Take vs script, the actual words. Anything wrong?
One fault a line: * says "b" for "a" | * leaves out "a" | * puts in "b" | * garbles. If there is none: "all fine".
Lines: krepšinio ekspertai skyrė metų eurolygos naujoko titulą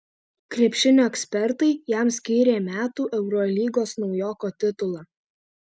* puts in "jam"